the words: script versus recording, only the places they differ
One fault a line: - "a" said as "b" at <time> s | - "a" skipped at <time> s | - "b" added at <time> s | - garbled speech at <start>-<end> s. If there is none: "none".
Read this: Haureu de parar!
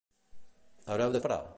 none